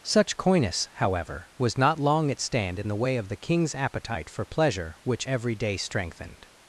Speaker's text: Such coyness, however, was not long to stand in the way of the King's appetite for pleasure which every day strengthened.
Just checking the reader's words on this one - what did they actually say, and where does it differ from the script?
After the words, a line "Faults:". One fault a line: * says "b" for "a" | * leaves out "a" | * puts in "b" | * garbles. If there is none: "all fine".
Such coyness, however, was not long at stand in the way of the King's appetite for pleasure which every day strengthened.
Faults:
* says "at" for "to"